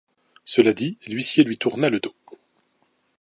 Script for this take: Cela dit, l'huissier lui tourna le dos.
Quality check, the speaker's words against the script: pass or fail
pass